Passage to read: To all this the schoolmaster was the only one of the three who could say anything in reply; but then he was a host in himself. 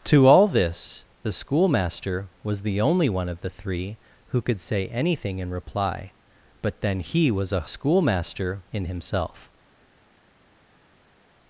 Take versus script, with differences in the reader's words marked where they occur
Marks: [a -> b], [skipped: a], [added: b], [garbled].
To all this the schoolmaster was the only one of the three who could say anything in reply; but then he was a [host -> schoolmaster] in himself.